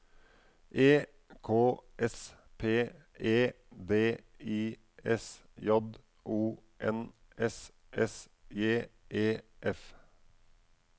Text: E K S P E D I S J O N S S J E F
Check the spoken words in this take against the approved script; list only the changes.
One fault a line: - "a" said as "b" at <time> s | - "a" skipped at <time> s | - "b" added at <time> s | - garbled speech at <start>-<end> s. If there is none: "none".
none